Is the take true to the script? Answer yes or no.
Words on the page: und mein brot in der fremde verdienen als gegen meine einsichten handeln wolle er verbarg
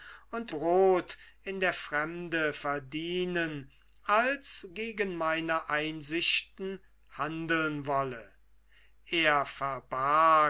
no